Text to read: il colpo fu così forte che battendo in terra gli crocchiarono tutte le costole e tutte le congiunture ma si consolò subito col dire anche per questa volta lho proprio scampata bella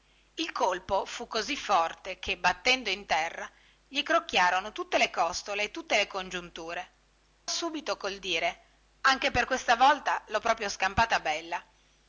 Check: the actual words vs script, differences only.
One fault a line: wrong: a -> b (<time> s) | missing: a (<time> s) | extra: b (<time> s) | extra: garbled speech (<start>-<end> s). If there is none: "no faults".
missing: ma si consolò (6.9 s)